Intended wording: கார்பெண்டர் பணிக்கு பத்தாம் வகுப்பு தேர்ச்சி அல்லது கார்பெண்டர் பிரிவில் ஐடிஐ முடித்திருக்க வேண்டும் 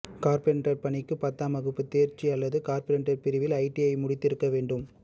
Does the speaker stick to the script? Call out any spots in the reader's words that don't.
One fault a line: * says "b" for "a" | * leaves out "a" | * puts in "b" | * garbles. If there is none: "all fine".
all fine